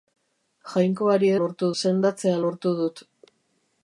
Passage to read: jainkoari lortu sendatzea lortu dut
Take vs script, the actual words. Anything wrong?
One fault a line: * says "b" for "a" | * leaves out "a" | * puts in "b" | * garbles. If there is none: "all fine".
all fine